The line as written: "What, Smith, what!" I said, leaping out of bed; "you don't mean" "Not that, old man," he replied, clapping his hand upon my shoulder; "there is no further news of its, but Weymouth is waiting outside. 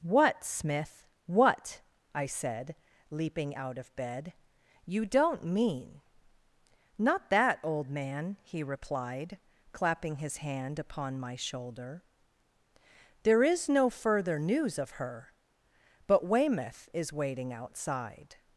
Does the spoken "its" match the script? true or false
false